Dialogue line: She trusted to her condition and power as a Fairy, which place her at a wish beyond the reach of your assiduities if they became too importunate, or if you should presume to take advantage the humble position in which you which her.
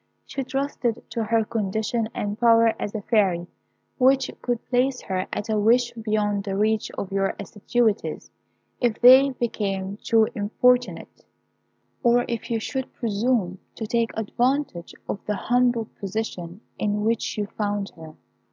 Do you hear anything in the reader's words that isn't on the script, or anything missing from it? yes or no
yes